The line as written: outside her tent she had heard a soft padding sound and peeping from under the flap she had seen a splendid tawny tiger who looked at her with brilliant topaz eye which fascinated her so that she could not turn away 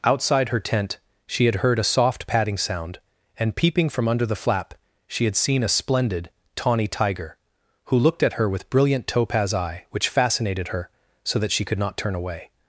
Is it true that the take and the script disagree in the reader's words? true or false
false